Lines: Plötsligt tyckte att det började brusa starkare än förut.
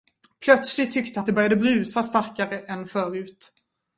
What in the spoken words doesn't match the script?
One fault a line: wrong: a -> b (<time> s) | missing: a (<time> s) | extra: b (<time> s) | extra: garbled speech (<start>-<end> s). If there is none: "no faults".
no faults